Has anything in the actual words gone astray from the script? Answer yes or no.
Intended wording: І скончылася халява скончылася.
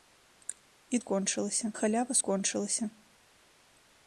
no